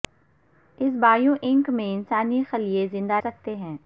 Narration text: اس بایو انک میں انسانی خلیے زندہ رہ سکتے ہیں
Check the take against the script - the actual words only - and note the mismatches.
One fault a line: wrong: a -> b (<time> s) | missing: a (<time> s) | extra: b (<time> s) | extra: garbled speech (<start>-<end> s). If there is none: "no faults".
missing: رہ (3.2 s)